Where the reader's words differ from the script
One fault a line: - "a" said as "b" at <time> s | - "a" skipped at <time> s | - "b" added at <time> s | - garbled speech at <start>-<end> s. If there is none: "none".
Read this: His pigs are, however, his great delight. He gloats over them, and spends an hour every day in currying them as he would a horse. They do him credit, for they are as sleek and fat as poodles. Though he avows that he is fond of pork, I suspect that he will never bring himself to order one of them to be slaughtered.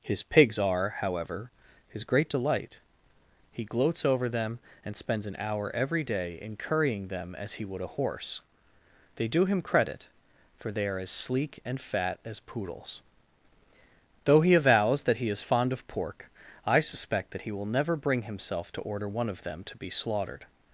none